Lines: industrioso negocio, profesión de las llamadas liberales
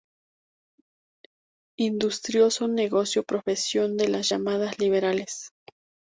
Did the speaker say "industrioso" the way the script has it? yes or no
yes